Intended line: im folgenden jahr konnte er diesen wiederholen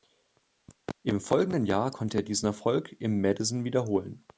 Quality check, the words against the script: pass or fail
fail